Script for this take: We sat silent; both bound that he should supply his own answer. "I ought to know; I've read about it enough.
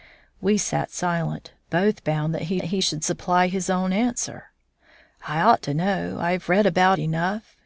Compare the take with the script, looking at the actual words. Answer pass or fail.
fail